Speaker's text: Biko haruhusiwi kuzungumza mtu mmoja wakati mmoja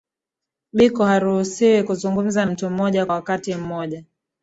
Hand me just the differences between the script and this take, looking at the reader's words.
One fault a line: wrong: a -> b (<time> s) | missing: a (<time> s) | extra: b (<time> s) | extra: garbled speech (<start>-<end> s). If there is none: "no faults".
no faults